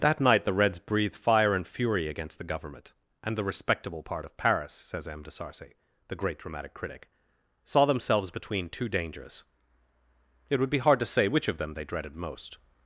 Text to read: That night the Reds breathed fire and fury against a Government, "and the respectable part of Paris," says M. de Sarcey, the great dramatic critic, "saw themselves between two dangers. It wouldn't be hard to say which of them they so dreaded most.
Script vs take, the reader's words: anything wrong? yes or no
yes